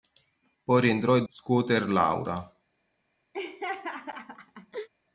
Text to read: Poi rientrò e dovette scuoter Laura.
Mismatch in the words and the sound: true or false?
true